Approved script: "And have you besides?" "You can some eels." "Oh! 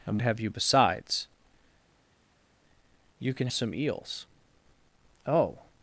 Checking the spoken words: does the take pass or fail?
pass